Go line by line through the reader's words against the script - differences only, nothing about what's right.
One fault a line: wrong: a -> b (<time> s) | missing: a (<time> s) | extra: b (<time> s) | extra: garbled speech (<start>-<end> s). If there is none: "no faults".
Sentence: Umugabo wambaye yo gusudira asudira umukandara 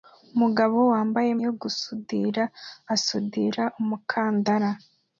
no faults